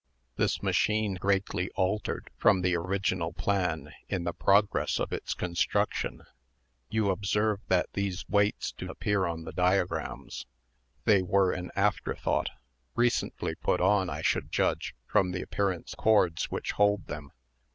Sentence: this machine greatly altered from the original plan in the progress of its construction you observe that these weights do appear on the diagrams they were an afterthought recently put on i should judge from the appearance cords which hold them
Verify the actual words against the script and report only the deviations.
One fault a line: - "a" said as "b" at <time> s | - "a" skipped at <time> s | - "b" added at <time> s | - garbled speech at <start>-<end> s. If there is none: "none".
none